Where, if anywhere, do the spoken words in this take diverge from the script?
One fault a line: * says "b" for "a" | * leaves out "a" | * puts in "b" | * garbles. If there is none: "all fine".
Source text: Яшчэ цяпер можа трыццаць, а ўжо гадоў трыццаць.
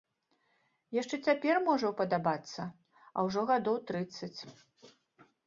* says "ўпадабацца" for "трыццаць"